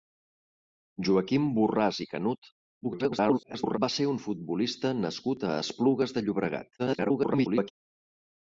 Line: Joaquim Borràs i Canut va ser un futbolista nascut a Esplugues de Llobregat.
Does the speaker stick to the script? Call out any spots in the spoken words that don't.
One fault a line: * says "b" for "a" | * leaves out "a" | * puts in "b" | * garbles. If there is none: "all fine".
* garbles
* garbles